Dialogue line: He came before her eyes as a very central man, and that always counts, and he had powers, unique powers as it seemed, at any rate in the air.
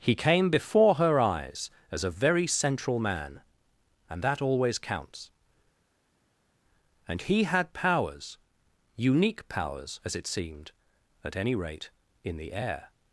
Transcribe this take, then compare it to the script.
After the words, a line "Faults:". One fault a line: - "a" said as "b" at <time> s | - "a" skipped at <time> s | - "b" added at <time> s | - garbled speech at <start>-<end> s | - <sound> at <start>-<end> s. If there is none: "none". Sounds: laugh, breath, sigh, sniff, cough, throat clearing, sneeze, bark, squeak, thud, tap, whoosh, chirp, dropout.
He came before her eyes as a very central man, and that always counts, and he had powers, unique powers as it seemed, at any rate in the air.
Faults:
none